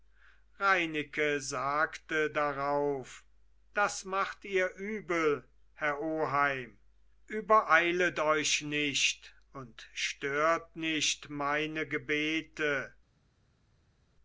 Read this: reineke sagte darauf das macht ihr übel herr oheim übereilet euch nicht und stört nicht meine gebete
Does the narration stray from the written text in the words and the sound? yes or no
no